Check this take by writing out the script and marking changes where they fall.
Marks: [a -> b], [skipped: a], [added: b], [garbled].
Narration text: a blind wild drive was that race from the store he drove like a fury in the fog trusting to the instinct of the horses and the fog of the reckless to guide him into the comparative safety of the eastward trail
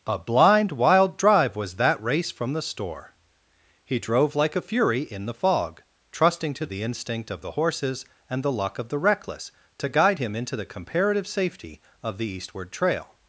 a blind wild drive was that race from the store he drove like a fury in the fog trusting to the instinct of the horses and the [fog -> luck] of the reckless to guide him into the comparative safety of the eastward trail